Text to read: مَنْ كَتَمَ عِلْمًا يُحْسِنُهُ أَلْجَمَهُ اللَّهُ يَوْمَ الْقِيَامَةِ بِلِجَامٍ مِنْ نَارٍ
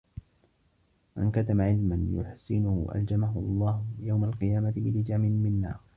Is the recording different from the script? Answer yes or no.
no